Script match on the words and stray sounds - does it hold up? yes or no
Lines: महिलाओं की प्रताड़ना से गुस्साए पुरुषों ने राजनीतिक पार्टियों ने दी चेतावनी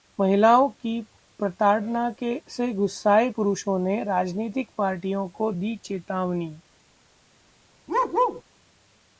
no